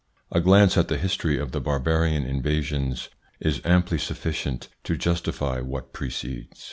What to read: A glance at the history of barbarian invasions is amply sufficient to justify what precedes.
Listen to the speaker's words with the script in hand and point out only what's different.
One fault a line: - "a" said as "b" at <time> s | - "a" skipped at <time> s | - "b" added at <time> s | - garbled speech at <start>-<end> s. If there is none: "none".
- "the" added at 1.5 s